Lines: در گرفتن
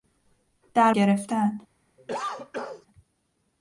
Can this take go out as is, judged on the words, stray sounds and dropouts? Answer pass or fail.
fail